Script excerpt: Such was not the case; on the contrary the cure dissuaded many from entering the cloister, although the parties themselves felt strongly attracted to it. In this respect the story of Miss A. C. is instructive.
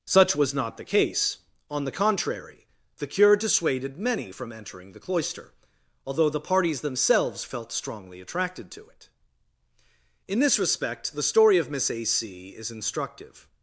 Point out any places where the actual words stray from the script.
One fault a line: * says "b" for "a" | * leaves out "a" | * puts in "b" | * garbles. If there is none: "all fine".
all fine